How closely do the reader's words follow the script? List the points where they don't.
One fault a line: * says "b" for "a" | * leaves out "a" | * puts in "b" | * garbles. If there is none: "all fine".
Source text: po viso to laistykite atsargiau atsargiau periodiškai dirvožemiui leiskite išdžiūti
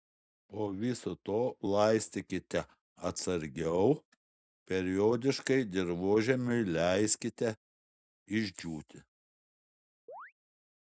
* leaves out "atsargiau"